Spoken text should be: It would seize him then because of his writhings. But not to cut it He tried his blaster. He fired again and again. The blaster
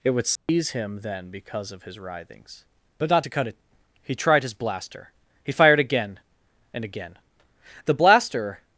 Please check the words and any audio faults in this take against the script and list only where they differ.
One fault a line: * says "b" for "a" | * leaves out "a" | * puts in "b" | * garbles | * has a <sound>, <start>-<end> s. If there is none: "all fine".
* has a dropout, 0.4-0.5 s